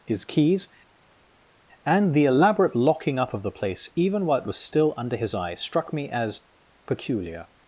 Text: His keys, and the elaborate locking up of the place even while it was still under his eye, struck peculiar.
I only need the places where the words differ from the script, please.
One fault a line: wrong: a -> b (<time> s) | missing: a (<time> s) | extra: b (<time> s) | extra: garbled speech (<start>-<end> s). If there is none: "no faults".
extra: me as (5.9 s)